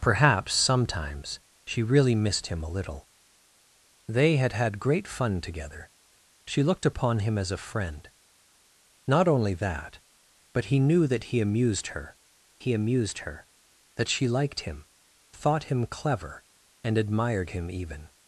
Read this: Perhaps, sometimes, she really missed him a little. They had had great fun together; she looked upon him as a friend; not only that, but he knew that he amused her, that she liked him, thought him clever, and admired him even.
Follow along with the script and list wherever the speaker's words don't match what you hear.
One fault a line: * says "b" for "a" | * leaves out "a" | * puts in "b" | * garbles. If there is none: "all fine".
* puts in "he amused her"